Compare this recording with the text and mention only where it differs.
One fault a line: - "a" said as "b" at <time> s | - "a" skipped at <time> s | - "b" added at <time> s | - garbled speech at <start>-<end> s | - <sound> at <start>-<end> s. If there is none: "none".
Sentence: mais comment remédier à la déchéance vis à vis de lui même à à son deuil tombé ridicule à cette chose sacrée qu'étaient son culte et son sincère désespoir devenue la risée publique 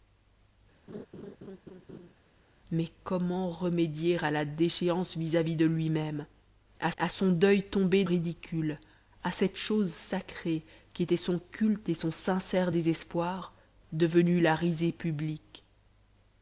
- laugh at 0.9-2.1 s